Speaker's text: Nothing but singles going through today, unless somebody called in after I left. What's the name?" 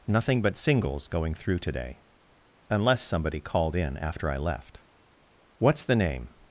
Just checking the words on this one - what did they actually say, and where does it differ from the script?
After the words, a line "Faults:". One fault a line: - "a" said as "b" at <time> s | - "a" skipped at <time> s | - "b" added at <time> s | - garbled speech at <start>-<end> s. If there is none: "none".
Nothing but singles going through today, unless somebody called in after I left. What's the name?"
Faults:
none